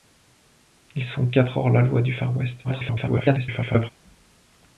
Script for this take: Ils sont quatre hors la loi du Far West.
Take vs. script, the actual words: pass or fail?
fail